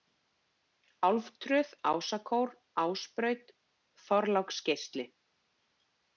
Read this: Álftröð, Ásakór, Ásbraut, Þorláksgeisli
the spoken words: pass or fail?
pass